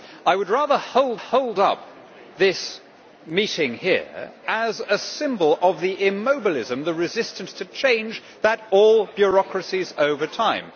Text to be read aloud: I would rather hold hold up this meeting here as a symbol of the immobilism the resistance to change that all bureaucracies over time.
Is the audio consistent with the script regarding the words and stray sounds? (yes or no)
yes